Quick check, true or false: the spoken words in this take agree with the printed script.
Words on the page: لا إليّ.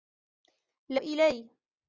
true